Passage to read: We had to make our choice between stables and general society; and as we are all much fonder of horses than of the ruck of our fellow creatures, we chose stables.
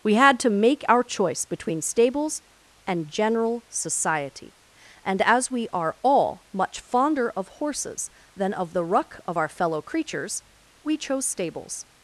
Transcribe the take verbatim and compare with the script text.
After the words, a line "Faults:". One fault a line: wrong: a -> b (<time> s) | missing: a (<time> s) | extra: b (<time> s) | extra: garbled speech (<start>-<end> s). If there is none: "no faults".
We had to make our choice between stables and general society; and as we are all much fonder of horses than of the ruck of our fellow creatures, we chose stables.
Faults:
no faults